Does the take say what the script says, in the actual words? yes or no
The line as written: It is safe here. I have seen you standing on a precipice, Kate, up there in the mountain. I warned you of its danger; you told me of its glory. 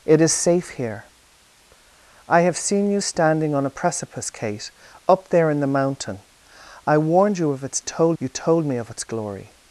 no